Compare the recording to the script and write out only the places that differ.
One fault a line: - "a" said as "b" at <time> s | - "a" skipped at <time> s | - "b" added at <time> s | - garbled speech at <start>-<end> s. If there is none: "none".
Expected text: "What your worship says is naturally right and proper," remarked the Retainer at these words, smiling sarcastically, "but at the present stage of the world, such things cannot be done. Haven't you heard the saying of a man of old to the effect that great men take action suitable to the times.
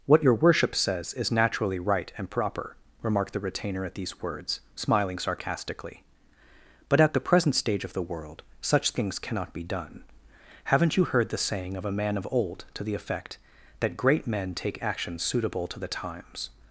none